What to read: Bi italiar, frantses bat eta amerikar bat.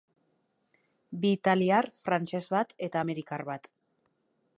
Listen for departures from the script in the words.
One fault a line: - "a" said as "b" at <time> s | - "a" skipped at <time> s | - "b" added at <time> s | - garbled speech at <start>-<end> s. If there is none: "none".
none